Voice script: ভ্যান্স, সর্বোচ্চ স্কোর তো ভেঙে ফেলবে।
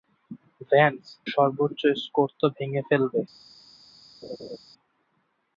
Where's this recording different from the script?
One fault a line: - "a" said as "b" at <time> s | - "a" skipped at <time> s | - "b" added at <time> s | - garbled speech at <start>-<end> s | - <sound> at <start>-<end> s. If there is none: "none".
- laugh at 4.2-4.6 s